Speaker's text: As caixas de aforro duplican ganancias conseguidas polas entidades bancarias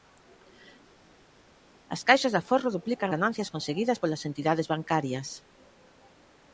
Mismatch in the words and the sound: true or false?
false